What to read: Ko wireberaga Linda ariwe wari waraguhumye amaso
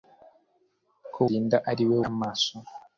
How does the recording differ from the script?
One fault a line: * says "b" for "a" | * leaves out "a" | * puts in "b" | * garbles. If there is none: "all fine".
* leaves out "wireberaga"
* leaves out "wari waraguhumye"